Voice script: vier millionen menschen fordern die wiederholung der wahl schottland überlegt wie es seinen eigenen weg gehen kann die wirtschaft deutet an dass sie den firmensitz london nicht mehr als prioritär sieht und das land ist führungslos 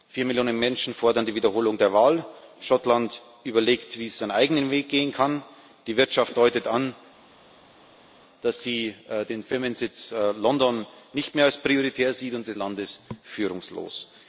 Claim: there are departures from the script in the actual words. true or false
false